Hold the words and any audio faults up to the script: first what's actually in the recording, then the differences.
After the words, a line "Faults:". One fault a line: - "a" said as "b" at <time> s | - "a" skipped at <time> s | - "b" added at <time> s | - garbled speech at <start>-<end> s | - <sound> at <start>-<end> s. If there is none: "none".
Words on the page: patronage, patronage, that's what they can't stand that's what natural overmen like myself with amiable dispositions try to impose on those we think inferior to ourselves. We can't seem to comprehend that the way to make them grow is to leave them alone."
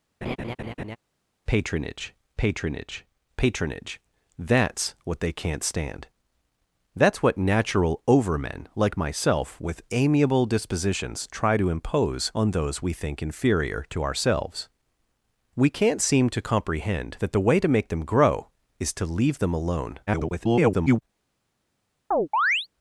patronage patronage, patronage, that's what they can't stand that's what natural overmen like myself with amiable dispositions try to impose on those we think inferior to ourselves. We can't seem to comprehend that the way to make them grow is to leave them alone." [garbled]
Faults:
- laugh at 0.2-1.0 s
- "patronage" added at 3.4 s
- garbled speech at 20.1-21.0 s
- chirp at 22.1-22.7 s